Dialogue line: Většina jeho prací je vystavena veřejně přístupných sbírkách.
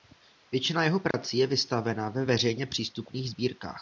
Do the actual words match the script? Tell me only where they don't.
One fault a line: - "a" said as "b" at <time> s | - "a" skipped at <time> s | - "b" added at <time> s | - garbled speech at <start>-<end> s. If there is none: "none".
- "ve" added at 2.1 s